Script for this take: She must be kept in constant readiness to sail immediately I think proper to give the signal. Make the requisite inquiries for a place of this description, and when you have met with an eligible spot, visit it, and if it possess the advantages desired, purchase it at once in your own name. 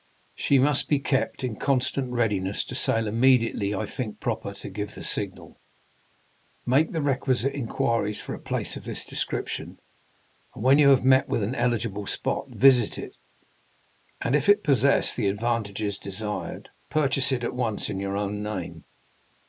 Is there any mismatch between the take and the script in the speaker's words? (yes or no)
no